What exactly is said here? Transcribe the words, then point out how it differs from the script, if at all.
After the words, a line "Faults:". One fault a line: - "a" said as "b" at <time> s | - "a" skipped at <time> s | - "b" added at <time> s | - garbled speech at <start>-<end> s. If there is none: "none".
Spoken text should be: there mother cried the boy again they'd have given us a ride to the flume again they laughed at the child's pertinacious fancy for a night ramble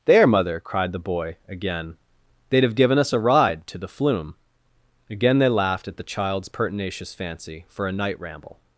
there mother cried the boy again they'd have given us a ride to the flume again they laughed at the child's pertinacious fancy for a night ramble
Faults:
none